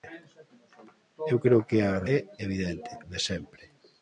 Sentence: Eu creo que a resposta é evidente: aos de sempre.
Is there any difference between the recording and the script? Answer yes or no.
yes